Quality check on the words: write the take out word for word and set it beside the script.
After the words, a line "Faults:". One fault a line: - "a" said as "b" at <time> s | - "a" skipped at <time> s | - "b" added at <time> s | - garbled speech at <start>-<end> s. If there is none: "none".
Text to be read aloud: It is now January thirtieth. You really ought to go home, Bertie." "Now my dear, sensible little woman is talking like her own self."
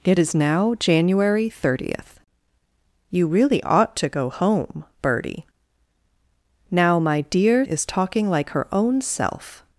It is now January thirtieth. You really ought to go home, Bertie." "Now my dear, is talking like her own self."
Faults:
- "sensible little woman" skipped at 7.7 s